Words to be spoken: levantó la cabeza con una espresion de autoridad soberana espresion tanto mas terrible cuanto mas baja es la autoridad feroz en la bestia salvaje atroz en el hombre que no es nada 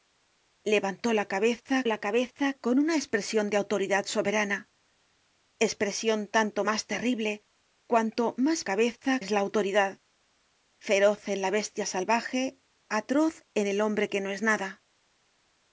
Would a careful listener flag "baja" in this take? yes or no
yes